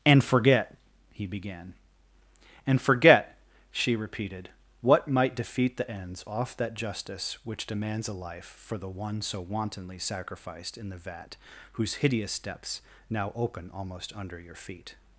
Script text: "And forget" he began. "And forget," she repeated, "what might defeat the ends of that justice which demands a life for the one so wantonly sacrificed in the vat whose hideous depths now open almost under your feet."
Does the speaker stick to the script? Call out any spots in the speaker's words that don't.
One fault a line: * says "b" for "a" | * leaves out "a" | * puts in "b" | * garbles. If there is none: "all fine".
* says "off" for "of"